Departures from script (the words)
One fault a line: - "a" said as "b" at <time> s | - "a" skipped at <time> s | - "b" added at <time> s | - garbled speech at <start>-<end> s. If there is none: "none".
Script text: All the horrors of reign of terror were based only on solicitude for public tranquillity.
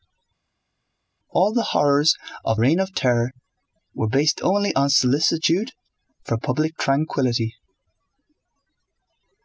none